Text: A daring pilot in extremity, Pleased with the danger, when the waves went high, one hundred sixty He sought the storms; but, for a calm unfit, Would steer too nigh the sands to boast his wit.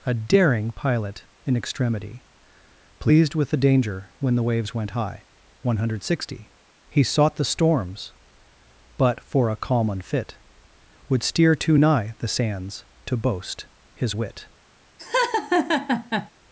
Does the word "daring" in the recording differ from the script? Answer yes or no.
no